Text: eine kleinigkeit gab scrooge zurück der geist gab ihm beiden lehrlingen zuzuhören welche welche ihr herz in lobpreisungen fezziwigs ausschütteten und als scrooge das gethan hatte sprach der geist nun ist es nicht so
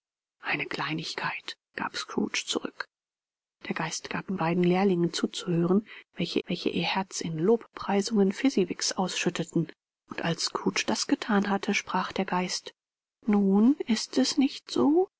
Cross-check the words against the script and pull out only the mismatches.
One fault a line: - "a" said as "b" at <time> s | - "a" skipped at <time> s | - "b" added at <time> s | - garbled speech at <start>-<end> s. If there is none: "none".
none